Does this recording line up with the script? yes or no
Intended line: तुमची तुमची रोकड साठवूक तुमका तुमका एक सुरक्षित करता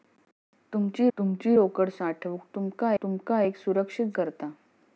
yes